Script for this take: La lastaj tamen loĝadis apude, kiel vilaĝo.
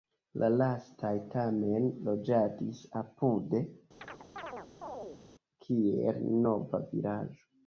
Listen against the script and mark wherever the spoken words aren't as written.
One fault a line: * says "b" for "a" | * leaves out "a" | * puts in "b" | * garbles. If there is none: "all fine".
* puts in "nova"